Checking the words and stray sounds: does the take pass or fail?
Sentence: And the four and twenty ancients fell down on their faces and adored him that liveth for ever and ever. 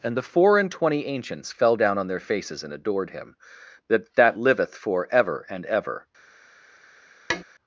fail